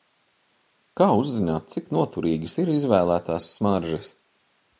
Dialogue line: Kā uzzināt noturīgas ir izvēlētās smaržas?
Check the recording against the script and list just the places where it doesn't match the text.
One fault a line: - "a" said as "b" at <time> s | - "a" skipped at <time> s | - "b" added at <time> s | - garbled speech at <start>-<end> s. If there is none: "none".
- "cik" added at 1.8 s